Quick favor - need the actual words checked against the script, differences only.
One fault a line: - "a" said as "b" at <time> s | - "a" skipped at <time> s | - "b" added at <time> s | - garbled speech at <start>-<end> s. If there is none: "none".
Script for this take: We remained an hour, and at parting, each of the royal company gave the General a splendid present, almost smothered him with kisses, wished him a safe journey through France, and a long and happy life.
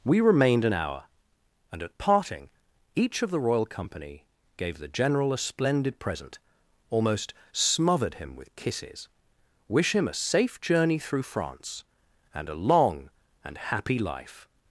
- "wished" said as "wish" at 9.7 s